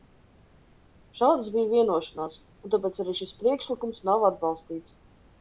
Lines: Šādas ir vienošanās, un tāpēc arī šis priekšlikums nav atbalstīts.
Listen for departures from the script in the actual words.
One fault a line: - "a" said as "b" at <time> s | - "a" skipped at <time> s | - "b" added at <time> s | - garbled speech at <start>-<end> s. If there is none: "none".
- "ir" said as "bija" at 1.5 s